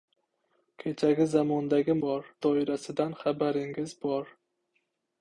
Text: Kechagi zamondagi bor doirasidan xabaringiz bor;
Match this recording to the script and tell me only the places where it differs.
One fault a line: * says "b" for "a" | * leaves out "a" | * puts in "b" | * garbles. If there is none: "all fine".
all fine